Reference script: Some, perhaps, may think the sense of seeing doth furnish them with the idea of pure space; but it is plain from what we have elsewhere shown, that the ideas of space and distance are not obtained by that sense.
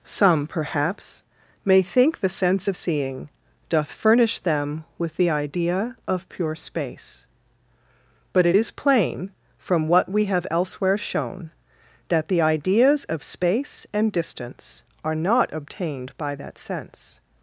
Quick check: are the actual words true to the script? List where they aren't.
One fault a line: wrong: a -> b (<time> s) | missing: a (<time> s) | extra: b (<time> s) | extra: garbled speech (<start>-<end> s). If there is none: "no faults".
no faults